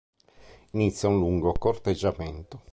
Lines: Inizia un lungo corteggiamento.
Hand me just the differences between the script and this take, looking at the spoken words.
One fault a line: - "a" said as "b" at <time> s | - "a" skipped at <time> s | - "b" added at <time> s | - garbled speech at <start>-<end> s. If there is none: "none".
none